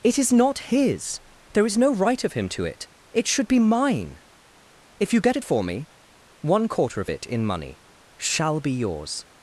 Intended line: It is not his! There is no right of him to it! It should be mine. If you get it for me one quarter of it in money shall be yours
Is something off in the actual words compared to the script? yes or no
no